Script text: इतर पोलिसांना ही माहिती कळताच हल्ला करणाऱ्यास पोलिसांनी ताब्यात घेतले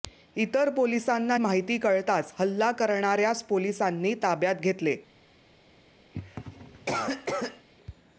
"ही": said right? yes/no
no